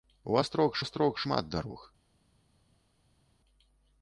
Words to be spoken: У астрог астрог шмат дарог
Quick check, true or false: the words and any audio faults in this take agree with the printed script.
true